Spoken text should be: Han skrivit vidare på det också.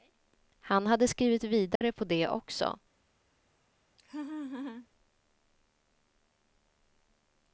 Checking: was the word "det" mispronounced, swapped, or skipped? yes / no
no